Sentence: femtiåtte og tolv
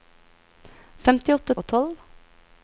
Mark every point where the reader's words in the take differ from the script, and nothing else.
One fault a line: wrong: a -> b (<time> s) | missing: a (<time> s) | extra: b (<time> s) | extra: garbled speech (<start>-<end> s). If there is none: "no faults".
no faults